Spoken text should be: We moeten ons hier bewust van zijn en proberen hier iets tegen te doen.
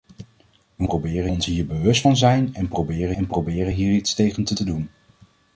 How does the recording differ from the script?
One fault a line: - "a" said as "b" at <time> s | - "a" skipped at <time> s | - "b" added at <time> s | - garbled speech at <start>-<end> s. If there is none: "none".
- "moeten" said as "proberen" at 0.8 s
- "en proberen" added at 3.1 s
- "te" added at 4.5 s